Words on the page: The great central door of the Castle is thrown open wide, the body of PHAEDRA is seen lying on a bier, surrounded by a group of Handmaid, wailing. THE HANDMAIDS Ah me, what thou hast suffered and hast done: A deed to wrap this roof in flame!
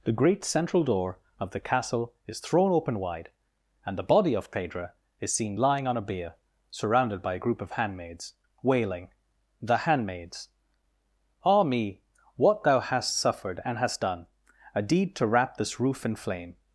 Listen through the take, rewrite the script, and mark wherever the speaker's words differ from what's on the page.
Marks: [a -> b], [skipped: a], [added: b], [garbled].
The great central door of the Castle is thrown open wide, [added: and] the body of PHAEDRA is seen lying on a bier, surrounded by a group of [Handmaid, -> Handmaids] wailing. THE HANDMAIDS Ah me, what thou hast suffered and hast done: A deed to wrap this roof in flame!